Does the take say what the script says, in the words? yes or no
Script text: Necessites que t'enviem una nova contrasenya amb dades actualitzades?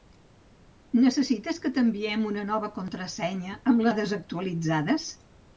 yes